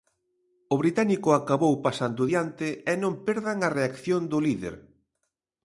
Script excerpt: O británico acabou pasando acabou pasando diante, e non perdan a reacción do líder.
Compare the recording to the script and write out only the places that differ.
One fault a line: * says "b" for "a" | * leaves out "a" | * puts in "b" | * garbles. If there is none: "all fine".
* leaves out "acabou pasando"